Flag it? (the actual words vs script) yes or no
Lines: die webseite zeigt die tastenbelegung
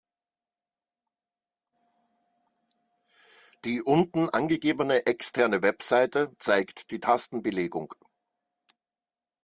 yes